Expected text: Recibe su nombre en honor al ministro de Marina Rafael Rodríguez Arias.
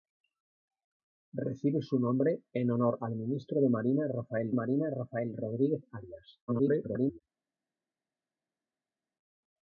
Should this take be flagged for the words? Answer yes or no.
yes